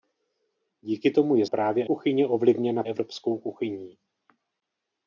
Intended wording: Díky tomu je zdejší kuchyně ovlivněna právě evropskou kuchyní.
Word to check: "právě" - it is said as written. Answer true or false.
false